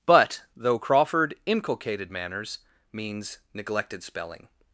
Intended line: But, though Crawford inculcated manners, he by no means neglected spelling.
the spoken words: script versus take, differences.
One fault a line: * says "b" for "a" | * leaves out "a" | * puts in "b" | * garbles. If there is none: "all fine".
* leaves out "he by no"